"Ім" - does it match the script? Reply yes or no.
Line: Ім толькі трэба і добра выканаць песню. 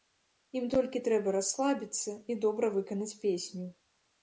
yes